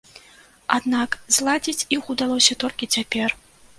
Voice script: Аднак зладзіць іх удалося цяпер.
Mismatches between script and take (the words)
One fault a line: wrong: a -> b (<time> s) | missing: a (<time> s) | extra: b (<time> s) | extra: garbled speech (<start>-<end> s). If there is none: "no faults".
extra: толькі (2.6 s)